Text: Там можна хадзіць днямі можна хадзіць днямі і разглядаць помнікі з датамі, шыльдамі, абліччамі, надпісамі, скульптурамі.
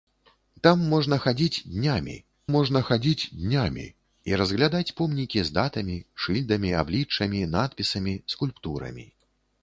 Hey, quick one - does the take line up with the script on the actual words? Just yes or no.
yes